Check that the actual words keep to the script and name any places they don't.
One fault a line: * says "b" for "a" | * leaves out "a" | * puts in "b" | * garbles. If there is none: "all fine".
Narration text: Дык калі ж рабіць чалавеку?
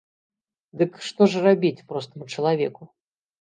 * says "што" for "калі"
* puts in "простаму"